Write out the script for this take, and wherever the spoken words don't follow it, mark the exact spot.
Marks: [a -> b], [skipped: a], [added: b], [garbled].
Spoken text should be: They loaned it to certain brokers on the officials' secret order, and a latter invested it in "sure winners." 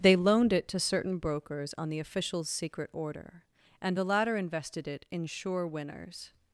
They loaned it to certain brokers on the officials' secret order, and [a -> the] latter invested it in "sure winners."